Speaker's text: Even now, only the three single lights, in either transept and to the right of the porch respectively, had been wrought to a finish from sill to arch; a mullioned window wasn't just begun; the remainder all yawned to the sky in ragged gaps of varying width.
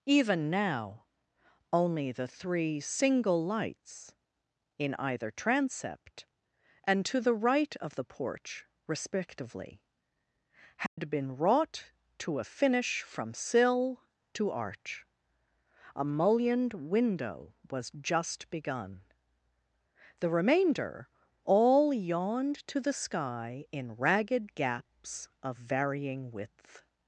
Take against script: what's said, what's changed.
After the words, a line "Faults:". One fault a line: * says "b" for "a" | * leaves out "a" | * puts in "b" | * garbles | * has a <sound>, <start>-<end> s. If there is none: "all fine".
Even now, only the three single lights, in either transept and to the right of the porch respectively, had been wrought to a finish from sill to arch; a mullioned window was just begun; the remainder all yawned to the sky in ragged gaps of varying width.
Faults:
* has a dropout, 10.9-11.0 s
* says "was" for "wasn't"